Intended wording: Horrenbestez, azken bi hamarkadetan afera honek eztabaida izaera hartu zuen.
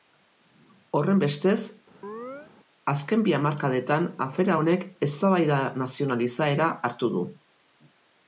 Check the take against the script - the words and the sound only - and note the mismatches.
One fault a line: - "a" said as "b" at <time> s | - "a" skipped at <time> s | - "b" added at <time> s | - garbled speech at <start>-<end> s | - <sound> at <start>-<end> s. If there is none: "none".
- chirp at 2.0-2.5 s
- "nazional" added at 5.8 s
- "zuen" said as "du" at 7.2 s